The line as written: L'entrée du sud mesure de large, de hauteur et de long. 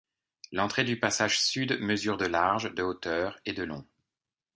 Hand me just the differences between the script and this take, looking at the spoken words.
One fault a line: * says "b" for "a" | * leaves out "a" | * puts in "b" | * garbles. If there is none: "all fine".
* puts in "passage"